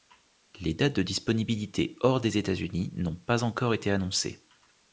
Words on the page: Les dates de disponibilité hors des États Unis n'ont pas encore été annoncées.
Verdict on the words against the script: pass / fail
pass